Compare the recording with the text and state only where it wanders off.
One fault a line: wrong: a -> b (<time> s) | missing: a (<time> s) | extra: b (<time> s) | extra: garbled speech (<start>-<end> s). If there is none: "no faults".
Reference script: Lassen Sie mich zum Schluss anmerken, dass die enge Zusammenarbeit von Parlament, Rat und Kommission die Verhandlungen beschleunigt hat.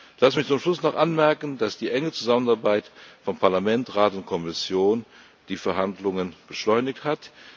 extra: noch (0.8 s)